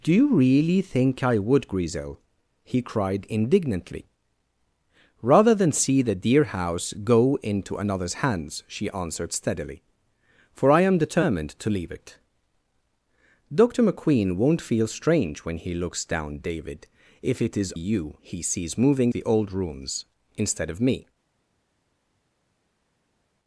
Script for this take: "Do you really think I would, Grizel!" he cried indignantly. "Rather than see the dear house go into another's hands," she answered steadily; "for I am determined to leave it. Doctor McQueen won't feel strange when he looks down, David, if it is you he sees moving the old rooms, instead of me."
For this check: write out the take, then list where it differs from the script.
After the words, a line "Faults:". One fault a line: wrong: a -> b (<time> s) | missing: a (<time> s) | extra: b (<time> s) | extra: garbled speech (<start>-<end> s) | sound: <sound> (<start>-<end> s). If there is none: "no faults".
"Do you really think I would, Grizel!" he cried indignantly. "Rather than see the dear house go into another's hands," she answered steadily; "for I am determined to leave it. Doctor McQueen won't feel strange when he looks down, David, if it is you he sees moving the old rooms, instead of me."
Faults:
no faults